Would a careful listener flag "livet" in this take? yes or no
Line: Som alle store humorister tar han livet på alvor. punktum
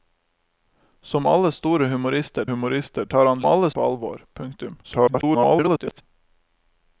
yes